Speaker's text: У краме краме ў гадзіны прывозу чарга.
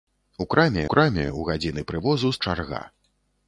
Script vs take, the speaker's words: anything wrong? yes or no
no